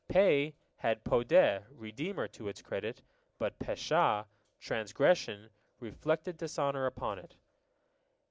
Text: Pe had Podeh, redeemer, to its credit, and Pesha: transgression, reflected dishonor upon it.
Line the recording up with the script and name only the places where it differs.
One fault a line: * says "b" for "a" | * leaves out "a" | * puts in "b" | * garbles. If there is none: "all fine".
* says "but" for "and"